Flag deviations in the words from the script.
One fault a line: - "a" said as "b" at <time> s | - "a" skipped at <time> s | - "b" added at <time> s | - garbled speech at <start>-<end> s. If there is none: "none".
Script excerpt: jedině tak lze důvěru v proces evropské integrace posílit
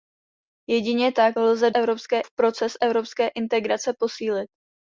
- "důvěru" said as "evropské" at 1.7 s